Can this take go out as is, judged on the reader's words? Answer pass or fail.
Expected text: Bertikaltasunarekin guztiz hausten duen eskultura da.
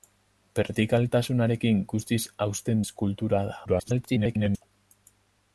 fail